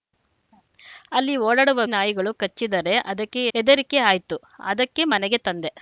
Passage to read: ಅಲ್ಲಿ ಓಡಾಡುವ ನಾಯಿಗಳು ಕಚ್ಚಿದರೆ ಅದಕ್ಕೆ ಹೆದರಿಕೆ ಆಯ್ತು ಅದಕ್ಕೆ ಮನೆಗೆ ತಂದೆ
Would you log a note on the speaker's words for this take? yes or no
no